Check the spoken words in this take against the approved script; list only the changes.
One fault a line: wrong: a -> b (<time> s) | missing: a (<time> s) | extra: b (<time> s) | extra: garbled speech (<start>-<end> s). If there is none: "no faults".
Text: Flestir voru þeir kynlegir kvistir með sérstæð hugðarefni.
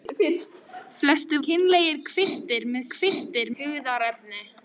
missing: voru þeir (1.4 s)
wrong: sérstæð -> kvistir (2.9 s)